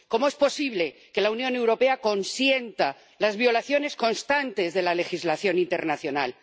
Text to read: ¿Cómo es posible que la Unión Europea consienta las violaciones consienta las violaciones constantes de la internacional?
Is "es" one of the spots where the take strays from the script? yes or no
no